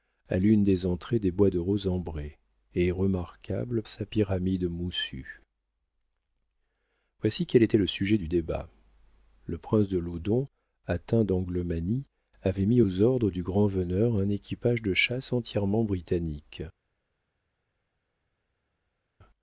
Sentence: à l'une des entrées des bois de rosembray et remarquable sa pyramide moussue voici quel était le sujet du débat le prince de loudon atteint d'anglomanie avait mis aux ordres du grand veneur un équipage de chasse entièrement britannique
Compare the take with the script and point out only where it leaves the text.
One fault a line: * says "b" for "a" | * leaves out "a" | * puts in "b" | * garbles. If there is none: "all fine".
all fine